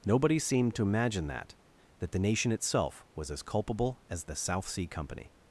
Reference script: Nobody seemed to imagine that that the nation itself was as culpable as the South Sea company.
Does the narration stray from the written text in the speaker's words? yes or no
no